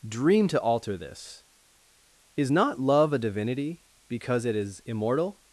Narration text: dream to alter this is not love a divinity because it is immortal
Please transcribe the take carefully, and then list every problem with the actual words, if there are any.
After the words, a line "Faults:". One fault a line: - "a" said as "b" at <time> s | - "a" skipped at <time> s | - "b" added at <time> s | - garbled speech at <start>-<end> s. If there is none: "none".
dream to alter this is not love a divinity because it is immortal
Faults:
none